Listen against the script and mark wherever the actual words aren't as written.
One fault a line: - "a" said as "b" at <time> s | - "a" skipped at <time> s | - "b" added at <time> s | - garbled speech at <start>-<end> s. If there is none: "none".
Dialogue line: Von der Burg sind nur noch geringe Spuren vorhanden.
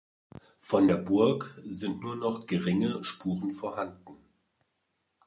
none